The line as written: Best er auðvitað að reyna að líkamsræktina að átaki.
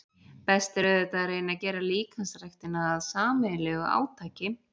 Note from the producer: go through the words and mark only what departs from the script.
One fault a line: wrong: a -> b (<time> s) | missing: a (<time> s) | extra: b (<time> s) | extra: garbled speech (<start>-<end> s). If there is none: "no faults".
extra: gera (1.6 s)
extra: sameiginlegu (3.1 s)